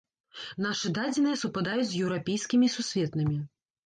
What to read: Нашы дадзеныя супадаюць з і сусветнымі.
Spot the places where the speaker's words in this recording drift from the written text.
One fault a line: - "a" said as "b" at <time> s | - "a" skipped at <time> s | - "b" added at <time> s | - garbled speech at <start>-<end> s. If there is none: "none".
- "еўрапейскімі" added at 2.0 s